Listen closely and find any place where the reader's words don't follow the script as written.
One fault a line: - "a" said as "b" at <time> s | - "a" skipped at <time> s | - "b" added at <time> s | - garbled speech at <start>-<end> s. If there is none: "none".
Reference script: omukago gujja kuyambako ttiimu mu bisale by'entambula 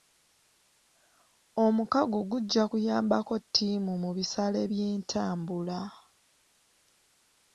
none